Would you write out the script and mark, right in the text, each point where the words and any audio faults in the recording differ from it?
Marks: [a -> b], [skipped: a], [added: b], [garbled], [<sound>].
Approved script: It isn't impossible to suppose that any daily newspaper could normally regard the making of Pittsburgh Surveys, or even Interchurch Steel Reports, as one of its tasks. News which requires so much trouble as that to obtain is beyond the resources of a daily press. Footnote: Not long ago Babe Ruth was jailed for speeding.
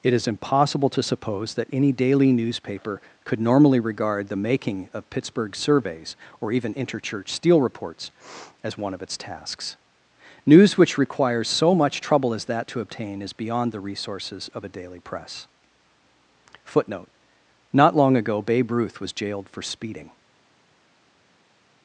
It [isn't -> is] impossible to suppose that any daily newspaper could normally regard the making of Pittsburgh Surveys, or even Interchurch Steel Reports, as one of its tasks. News which requires so much trouble as that to obtain is beyond the resources of a daily press. Footnote: Not long ago Babe Ruth was jailed for speeding.